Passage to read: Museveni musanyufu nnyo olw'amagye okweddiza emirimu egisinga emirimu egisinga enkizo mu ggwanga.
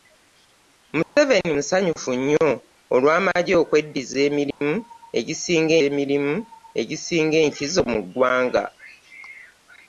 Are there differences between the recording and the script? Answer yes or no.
no